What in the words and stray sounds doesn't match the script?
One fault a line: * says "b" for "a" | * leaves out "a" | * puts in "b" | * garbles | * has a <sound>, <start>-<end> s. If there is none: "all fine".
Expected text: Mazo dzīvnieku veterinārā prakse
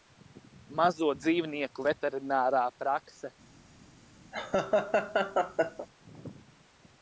* has a laugh, 4.3-5.9 s